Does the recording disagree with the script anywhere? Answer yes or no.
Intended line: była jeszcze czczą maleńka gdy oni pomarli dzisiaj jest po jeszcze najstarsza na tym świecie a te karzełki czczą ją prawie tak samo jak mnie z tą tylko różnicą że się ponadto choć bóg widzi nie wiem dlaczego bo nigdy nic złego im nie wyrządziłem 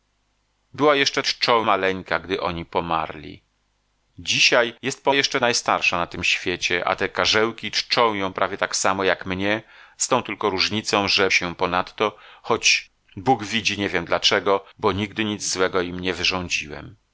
no